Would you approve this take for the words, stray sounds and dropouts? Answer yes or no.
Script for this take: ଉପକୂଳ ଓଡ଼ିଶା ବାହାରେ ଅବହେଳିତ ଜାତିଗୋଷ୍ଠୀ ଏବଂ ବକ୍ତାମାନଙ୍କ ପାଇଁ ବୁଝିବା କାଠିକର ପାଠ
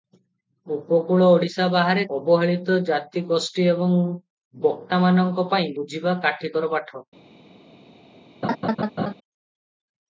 no